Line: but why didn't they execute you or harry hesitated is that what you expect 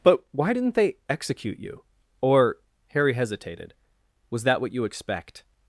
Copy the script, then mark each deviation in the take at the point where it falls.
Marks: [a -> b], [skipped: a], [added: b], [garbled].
but why didn't they execute you or harry hesitated [is -> was] that what you expect